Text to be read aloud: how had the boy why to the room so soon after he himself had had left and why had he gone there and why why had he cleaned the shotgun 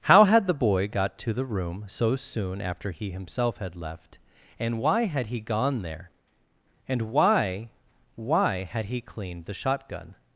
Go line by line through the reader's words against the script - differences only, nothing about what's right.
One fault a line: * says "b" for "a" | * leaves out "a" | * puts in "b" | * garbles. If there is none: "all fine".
* says "got" for "why"
* leaves out "had"